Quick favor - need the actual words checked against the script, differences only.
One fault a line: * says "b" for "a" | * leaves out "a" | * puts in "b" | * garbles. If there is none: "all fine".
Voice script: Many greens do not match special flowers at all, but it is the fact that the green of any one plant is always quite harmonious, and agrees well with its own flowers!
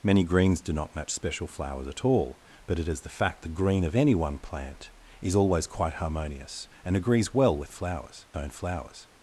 * leaves out "that"
* says "flowers" for "its"